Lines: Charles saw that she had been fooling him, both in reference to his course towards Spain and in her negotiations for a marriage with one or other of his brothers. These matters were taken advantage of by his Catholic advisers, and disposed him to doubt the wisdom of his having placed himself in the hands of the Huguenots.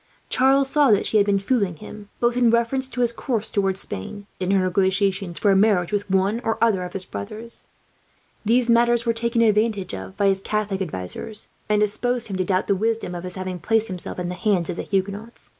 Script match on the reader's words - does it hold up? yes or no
no